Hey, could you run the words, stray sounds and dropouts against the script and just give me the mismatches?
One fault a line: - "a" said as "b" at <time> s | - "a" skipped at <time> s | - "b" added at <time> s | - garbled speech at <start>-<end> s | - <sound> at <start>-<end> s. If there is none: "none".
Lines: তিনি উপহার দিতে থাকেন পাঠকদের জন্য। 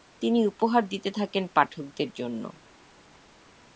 none